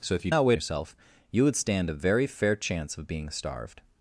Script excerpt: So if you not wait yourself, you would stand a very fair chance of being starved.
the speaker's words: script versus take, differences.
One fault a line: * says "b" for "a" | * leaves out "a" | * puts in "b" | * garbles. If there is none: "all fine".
all fine